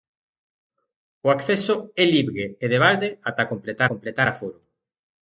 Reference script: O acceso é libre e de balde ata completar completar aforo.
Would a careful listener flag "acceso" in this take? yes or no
no